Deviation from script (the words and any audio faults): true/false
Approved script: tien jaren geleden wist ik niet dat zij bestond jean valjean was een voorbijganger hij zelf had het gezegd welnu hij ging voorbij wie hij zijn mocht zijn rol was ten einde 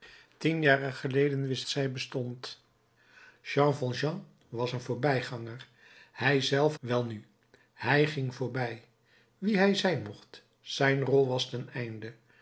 true